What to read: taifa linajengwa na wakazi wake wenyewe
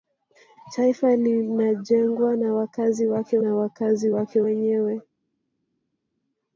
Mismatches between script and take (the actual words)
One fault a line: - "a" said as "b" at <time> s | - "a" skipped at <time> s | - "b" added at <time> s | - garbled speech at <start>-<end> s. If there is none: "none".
- "na wakazi wake" added at 3.4 s